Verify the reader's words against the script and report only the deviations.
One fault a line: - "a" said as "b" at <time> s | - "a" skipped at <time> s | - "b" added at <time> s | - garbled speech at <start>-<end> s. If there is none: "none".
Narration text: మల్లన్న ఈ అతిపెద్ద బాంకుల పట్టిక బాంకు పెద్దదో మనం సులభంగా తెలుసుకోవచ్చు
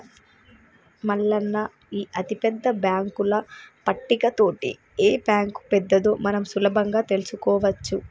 - "తోటి ఏ" added at 4.4 s